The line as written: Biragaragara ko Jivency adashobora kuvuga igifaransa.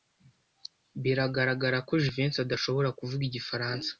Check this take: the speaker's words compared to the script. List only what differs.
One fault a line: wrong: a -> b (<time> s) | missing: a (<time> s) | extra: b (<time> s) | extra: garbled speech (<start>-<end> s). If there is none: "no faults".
no faults